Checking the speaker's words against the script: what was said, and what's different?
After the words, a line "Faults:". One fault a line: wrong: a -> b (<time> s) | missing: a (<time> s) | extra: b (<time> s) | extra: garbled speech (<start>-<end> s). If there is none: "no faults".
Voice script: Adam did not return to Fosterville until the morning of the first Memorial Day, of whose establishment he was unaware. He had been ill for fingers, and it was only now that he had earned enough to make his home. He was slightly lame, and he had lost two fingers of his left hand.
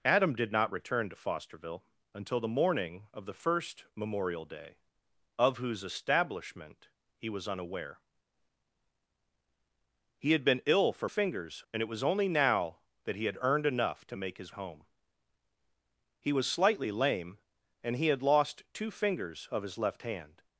Adam did not return to Fosterville until the morning of the first Memorial Day, of whose establishment he was unaware. He had been ill for fingers, and it was only now that he had earned enough to make his home. He was slightly lame, and he had lost two fingers of his left hand.
Faults:
no faults